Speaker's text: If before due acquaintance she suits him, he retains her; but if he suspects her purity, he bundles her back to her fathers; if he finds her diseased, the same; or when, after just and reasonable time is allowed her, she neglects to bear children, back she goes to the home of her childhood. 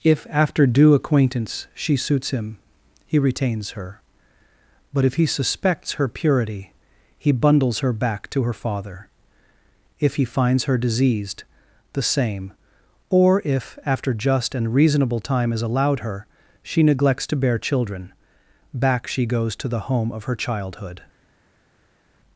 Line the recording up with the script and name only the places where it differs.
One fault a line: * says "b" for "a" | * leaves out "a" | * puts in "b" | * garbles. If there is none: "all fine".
* says "after" for "before"
* says "father" for "fathers"
* says "if" for "when"